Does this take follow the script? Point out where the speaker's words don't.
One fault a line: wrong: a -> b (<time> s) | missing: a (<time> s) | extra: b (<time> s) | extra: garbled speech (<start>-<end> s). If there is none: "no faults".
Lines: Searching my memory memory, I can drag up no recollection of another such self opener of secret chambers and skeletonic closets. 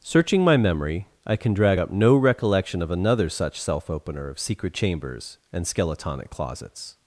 missing: memory (1.1 s)